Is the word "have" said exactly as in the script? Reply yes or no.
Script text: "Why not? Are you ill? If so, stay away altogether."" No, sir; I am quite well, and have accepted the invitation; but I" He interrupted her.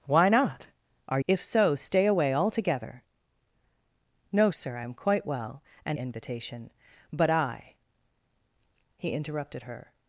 no